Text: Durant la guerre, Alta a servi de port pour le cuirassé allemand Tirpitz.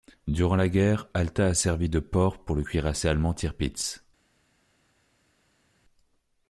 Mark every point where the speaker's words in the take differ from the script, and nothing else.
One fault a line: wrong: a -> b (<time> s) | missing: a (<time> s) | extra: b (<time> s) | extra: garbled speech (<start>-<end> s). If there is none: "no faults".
no faults